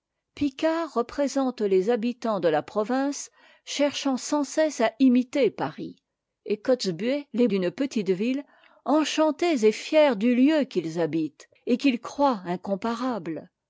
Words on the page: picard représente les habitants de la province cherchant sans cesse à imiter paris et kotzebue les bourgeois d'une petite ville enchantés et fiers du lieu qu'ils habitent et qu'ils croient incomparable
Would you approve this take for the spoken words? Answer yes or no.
no